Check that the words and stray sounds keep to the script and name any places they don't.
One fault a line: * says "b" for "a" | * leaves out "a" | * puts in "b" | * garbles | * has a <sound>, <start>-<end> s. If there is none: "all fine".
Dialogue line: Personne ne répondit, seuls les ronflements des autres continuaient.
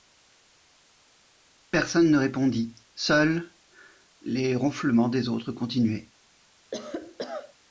* has a cough, 6.7-7.5 s